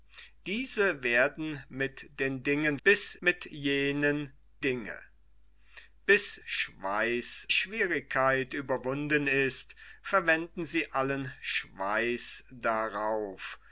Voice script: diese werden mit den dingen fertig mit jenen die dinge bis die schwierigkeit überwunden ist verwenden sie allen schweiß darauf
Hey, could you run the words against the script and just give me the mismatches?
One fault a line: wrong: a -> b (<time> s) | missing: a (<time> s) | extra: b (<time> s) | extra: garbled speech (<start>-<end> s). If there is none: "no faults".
wrong: fertig -> bis (2.8 s)
missing: die (4.3 s)
wrong: die -> schweiß (6.4 s)